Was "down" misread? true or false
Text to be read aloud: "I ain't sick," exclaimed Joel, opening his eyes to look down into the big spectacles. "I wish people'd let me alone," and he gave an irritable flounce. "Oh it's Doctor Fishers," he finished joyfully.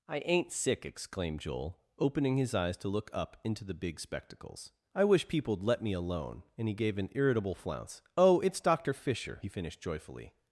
true